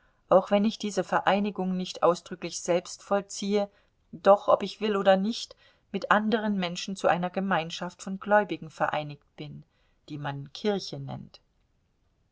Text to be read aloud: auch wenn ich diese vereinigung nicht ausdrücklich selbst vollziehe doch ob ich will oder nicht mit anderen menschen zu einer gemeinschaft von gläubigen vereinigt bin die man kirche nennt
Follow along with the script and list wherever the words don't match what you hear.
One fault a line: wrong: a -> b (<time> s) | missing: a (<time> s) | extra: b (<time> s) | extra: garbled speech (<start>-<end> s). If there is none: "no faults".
no faults